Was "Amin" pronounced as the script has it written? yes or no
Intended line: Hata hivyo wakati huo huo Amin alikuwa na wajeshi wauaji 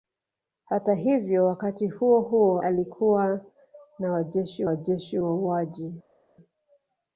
no